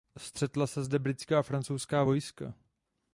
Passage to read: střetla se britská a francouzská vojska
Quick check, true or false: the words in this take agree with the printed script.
false